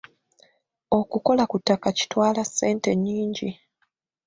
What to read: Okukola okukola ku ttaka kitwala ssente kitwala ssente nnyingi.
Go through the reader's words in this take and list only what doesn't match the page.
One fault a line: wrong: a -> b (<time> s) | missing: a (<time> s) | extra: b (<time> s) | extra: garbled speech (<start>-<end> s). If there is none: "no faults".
missing: okukola (1.4 s)
missing: kitwala ssente (2.9 s)